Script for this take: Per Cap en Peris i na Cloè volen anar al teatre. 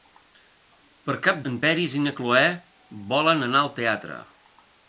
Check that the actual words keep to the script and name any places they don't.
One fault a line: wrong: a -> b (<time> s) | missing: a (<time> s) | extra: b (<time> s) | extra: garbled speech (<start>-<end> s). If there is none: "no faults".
no faults